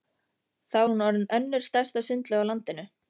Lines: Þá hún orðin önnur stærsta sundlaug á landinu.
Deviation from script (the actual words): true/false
false